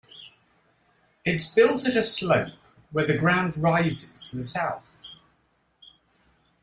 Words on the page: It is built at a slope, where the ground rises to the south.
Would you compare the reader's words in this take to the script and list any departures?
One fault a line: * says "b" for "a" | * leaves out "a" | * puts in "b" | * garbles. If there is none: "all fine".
all fine